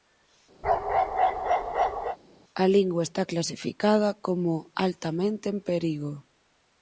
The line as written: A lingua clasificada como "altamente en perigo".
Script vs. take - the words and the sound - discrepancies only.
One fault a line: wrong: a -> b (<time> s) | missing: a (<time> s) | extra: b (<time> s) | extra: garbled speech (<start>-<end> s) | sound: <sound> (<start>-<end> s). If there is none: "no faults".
sound: bark (0.6-2.2 s)
extra: está (3.1 s)